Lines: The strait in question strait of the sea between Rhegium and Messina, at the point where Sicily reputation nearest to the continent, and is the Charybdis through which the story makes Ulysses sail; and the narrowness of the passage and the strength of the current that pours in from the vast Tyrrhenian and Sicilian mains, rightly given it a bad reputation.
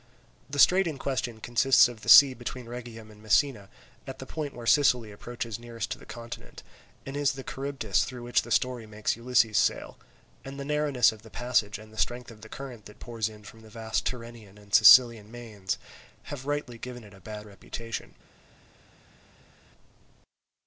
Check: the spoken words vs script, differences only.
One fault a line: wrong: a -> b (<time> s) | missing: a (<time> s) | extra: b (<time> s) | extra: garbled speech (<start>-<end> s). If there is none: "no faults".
wrong: strait -> consists (1.4 s)
wrong: reputation -> approaches (5.1 s)
extra: have (16.3 s)